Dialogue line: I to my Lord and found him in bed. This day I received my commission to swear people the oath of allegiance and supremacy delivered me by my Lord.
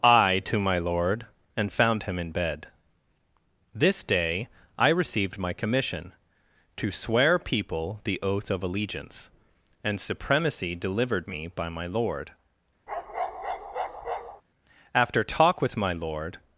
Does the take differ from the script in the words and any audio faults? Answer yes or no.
yes